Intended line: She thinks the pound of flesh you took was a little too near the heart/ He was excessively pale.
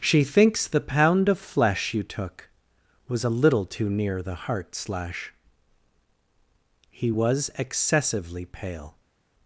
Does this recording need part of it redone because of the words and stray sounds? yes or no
yes